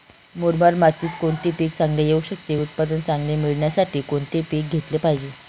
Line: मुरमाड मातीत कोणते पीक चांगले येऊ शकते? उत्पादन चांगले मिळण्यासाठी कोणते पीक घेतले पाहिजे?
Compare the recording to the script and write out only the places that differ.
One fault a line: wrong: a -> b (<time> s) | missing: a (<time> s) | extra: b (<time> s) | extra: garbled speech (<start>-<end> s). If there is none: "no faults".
no faults